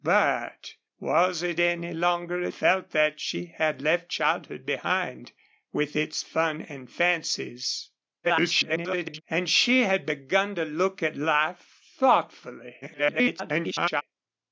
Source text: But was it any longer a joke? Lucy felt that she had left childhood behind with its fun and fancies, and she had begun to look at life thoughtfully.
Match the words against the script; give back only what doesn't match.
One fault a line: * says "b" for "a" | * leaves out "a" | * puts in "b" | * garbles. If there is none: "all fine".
* leaves out "joke Lucy"
* garbles
* garbles